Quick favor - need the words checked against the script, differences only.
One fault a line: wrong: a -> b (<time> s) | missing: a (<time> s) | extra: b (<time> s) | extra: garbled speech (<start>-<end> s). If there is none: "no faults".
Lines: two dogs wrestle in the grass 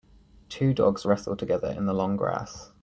extra: together (1.3 s)
extra: long (1.9 s)